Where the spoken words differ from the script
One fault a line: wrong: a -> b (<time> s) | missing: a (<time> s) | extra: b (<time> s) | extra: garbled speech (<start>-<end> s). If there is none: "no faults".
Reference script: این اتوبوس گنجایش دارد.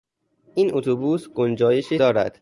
no faults